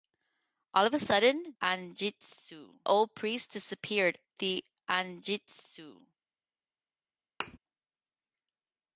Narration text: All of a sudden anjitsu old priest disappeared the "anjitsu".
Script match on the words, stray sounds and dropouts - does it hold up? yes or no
no